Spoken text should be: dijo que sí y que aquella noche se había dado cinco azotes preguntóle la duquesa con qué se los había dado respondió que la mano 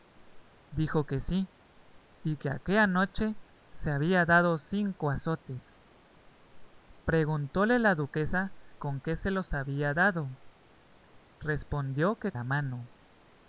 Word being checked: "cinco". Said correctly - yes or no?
yes